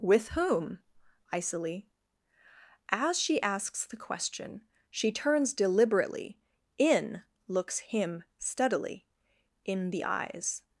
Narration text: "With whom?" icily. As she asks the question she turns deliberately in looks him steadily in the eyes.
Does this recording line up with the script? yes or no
yes